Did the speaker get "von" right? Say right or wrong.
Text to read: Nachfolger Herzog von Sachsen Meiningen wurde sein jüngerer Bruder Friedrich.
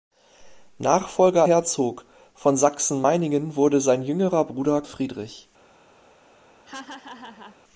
right